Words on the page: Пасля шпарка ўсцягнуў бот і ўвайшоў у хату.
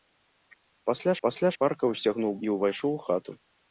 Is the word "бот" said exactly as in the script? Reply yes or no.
no